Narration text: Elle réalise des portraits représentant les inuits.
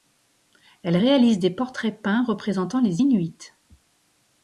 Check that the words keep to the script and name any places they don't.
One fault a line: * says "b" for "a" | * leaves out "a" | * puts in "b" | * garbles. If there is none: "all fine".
* puts in "peints"